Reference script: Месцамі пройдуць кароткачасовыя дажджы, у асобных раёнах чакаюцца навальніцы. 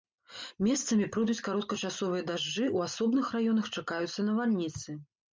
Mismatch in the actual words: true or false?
false